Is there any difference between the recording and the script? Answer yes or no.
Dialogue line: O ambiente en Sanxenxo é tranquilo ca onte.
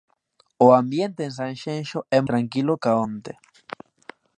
no